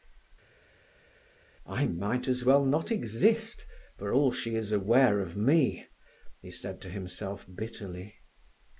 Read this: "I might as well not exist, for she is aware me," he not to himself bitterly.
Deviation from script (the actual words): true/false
true